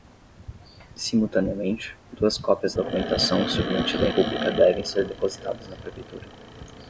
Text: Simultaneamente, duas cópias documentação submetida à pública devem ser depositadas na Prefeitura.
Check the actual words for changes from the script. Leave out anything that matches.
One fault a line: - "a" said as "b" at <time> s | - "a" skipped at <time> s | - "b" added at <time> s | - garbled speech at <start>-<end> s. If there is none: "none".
none